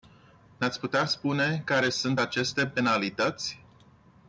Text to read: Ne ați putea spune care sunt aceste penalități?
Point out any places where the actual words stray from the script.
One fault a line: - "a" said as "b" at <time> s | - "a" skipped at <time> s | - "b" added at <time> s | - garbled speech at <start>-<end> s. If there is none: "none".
none